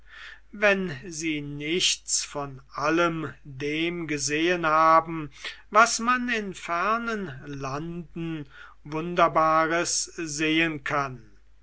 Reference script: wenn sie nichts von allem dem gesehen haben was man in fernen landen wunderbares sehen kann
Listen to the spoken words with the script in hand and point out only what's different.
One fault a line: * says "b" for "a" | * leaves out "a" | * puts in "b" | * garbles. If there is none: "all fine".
all fine